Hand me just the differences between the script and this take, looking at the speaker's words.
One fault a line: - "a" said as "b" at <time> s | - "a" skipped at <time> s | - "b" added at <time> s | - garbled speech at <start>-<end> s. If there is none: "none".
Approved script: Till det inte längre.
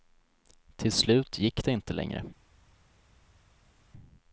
- "slut gick" added at 0.9 s